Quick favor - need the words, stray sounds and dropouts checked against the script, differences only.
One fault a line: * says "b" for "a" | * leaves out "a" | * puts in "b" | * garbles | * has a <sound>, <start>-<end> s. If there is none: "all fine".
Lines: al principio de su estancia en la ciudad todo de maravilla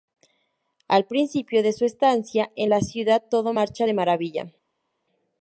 * puts in "marcha"